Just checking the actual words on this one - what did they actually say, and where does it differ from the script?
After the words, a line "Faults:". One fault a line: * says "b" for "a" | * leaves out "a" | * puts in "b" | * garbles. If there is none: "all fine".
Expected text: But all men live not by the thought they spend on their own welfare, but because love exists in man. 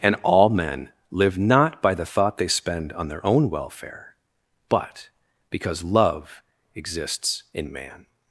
And all men live not by the thought they spend on their own welfare, but because love exists in man.
Faults:
* says "And" for "But"